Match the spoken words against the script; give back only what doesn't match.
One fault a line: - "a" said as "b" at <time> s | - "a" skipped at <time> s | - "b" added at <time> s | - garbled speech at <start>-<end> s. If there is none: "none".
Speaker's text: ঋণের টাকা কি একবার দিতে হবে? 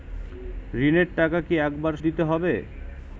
none